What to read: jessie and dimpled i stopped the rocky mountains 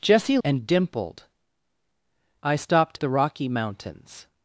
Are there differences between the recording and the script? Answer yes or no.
no